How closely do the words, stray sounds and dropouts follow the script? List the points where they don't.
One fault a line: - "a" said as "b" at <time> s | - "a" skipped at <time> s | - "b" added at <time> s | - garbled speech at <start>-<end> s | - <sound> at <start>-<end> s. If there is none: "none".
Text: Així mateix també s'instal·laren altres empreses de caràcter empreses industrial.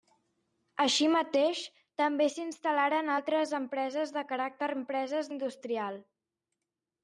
none